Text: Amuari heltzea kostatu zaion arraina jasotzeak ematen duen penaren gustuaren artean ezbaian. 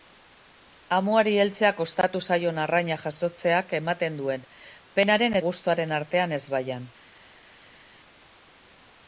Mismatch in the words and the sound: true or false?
false